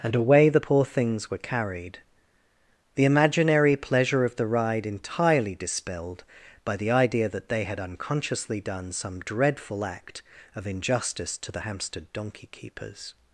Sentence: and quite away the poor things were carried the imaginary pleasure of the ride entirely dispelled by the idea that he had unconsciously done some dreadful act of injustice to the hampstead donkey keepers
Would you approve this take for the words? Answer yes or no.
no